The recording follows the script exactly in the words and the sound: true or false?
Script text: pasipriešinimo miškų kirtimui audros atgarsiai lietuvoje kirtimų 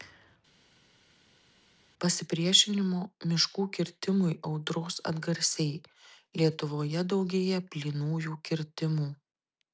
false